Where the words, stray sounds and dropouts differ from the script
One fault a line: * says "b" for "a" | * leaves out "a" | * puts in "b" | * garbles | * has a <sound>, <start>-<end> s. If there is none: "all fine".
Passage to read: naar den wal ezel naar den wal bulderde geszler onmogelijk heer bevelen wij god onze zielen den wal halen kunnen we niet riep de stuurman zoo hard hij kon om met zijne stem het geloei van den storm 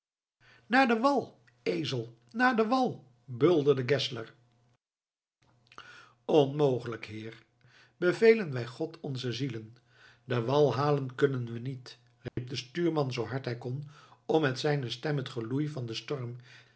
* has a dropout, 12.3-12.4 s